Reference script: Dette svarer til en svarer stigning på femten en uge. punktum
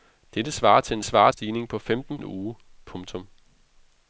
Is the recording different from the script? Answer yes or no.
no